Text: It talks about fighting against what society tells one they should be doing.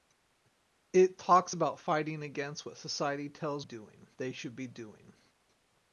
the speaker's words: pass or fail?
fail